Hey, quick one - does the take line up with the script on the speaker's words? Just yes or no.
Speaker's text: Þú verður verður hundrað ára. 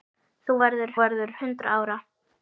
yes